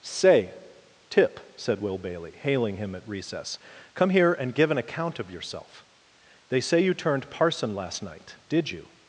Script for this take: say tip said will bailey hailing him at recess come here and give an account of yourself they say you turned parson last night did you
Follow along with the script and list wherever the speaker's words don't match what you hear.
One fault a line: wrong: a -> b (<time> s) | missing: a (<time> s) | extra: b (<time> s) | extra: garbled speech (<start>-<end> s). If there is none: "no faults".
no faults